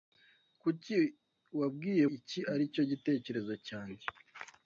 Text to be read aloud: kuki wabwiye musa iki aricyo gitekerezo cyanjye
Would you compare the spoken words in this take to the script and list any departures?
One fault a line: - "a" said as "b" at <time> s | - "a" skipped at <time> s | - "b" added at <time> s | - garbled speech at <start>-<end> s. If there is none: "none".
- "musa" skipped at 2.0 s